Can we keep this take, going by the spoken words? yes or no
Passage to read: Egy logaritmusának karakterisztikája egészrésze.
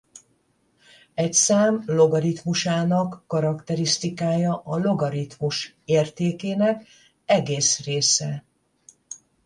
no